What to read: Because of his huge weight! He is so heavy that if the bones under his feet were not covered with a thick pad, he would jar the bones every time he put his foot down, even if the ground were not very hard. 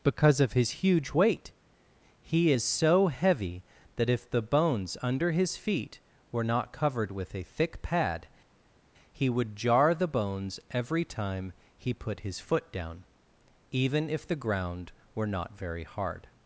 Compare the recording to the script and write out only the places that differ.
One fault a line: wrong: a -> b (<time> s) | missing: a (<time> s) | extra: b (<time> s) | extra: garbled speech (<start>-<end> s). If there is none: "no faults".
no faults